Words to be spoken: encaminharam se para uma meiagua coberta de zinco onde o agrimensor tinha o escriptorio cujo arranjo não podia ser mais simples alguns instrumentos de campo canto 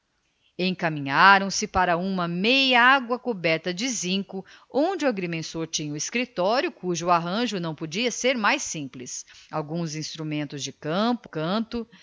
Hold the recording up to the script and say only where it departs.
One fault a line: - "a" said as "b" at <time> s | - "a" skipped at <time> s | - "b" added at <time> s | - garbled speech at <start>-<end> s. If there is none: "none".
none